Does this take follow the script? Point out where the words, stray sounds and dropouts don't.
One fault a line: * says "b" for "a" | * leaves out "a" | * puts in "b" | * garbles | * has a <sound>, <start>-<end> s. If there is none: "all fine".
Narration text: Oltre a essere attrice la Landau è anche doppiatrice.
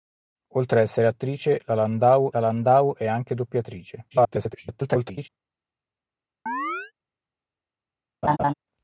* puts in "la Landau"
* garbles
* has a chirp, 6.5-6.9 s
* has a laugh, 8.2-8.5 s